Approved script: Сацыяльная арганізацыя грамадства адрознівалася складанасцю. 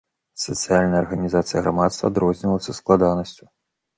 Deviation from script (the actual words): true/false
false